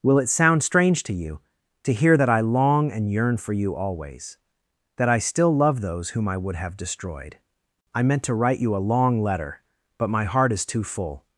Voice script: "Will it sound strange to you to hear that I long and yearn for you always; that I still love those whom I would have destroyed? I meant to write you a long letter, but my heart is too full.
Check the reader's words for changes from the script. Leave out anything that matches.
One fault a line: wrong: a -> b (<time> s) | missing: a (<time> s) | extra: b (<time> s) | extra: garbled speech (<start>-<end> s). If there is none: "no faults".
no faults